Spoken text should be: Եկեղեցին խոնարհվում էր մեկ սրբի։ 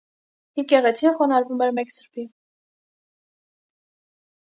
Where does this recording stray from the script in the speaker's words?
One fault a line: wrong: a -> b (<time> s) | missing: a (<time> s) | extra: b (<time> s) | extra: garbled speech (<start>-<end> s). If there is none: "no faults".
no faults